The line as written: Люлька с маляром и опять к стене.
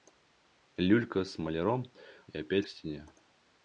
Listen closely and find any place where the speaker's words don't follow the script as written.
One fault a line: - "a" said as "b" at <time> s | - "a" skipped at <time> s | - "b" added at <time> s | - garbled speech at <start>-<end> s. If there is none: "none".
none